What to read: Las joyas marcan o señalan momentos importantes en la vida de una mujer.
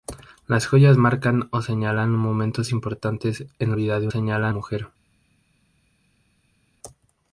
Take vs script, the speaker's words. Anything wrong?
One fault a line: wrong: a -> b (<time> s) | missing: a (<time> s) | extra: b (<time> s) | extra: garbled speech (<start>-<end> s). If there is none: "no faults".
missing: la (3.8 s)
wrong: una -> señalan (4.1 s)